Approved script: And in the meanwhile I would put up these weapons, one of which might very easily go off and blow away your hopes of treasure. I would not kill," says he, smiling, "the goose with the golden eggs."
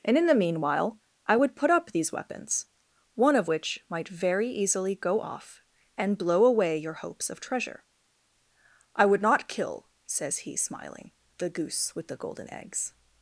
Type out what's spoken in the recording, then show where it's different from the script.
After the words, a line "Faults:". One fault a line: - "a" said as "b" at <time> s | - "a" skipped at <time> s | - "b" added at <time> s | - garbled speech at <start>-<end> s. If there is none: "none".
And in the meanwhile I would put up these weapons, one of which might very easily go off and blow away your hopes of treasure. I would not kill," says he, smiling, "the goose with the golden eggs."
Faults:
none